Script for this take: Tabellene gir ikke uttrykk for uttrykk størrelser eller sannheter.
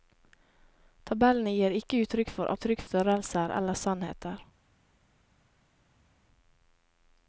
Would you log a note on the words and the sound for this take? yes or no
no